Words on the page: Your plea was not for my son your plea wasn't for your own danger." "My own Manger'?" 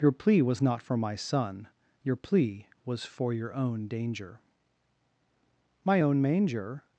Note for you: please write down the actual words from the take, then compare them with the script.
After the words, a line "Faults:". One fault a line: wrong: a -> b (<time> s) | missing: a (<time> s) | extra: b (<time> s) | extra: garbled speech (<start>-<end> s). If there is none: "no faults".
Your plea was not for my son your plea was for your own danger." "My own Manger'?"
Faults:
wrong: wasn't -> was (2.8 s)